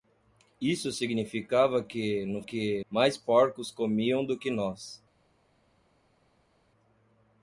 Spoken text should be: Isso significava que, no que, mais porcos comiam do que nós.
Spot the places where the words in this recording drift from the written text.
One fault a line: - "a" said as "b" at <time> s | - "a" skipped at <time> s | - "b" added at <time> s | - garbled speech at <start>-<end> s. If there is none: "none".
none